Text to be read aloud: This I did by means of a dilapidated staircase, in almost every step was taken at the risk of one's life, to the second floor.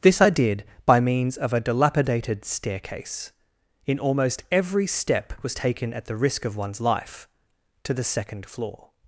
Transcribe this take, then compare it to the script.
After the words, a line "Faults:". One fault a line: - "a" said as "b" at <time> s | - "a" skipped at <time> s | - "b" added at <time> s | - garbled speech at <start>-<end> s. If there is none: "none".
This I did by means of a dilapidated staircase, in almost every step was taken at the risk of one's life, to the second floor.
Faults:
none